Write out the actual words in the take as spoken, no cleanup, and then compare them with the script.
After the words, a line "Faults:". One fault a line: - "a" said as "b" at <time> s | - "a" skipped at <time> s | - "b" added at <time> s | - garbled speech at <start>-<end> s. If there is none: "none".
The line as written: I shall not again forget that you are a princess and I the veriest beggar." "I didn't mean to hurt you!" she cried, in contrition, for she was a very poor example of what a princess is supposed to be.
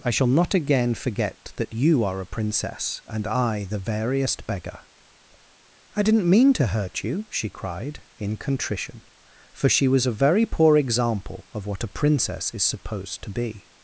I shall not again forget that you are a princess and I the veriest beggar." "I didn't mean to hurt you!" she cried, in contrition, for she was a very poor example of what a princess is supposed to be.
Faults:
none